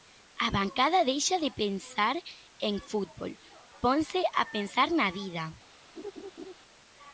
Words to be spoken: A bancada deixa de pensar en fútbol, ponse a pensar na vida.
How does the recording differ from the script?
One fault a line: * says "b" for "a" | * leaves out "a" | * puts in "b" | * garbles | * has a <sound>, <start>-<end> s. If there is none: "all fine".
* has a laugh, 6.0-6.5 s